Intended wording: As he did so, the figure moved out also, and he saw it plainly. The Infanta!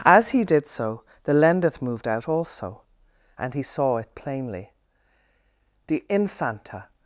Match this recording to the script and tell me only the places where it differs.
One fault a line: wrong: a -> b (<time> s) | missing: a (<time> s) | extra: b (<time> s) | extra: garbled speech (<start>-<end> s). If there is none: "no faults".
wrong: figure -> lendeth (1.3 s)